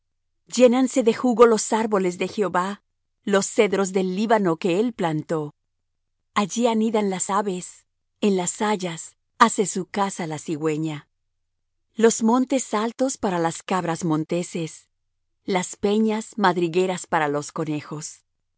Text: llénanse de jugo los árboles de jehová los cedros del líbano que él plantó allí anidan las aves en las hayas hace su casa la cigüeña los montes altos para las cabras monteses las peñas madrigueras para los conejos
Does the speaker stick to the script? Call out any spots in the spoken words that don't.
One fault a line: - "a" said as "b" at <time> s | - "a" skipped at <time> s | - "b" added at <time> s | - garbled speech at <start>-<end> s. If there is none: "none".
none